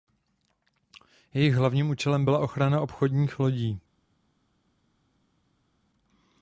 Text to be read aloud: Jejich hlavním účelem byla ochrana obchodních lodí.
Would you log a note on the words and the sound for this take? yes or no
no